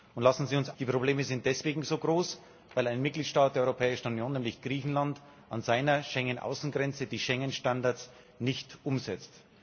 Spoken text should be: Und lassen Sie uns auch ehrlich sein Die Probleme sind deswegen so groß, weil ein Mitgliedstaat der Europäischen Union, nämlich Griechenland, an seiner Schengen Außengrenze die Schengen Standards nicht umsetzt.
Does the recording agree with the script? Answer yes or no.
no